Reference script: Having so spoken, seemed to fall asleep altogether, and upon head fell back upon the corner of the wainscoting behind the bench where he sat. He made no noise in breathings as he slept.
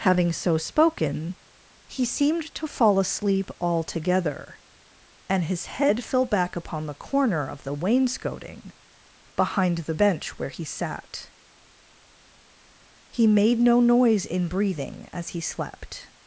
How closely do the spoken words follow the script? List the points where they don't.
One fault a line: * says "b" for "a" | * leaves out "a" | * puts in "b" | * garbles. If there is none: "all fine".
* puts in "he"
* says "his" for "upon"
* says "breathing" for "breathings"